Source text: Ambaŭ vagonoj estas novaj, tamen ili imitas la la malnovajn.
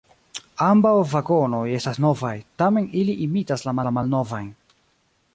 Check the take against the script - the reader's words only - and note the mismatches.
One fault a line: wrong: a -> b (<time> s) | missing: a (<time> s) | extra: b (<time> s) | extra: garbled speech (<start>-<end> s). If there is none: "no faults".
no faults